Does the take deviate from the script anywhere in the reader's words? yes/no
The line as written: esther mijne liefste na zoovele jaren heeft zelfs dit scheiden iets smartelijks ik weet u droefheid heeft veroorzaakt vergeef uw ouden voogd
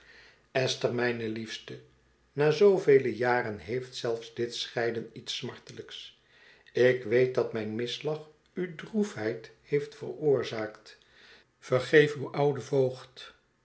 yes